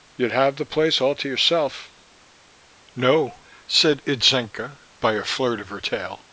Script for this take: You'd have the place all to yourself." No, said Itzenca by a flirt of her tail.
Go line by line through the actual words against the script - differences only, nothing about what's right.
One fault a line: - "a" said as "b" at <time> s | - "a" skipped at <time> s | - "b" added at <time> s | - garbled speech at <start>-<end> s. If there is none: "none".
none